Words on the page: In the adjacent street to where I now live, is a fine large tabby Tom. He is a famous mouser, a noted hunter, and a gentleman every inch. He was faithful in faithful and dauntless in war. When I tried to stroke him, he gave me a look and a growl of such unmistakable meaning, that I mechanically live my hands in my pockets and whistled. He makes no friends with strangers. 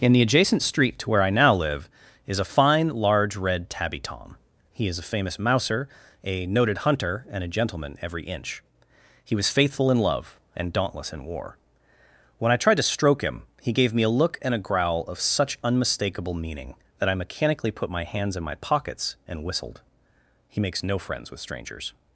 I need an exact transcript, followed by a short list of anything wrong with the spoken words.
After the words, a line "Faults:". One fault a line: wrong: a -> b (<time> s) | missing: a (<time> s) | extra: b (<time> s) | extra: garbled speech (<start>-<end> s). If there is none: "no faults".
In the adjacent street to where I now live, is a fine large red tabby Tom. He is a famous mouser, a noted hunter, and a gentleman every inch. He was faithful in love and dauntless in war. When I tried to stroke him, he gave me a look and a growl of such unmistakable meaning, that I mechanically put my hands in my pockets and whistled. He makes no friends with strangers.
Faults:
extra: red (3.4 s)
wrong: faithful -> love (10.0 s)
wrong: live -> put (17.7 s)